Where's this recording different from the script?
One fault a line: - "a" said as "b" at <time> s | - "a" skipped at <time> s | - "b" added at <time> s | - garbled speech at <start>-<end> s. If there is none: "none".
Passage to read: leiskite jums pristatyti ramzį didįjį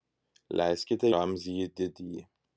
- "jums pristatyti" skipped at 1.1 s